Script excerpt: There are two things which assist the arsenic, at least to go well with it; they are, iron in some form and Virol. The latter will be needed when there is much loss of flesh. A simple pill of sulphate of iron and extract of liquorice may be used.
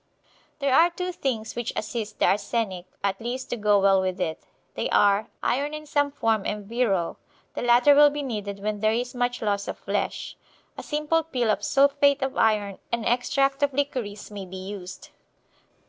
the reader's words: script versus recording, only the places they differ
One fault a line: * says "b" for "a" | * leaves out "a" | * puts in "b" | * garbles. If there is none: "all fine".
all fine